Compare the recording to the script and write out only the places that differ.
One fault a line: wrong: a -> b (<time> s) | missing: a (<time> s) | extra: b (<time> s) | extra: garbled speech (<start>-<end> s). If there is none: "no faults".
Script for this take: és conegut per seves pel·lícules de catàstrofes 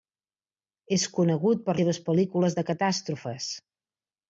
no faults